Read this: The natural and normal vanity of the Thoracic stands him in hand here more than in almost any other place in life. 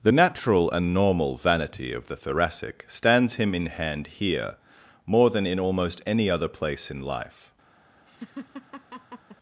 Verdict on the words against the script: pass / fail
pass